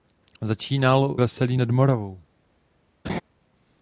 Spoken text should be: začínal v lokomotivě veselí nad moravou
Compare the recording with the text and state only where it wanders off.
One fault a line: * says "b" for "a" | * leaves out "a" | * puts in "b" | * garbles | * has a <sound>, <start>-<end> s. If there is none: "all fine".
* leaves out "v lokomotivě"
* has a laugh, 3.0-3.2 s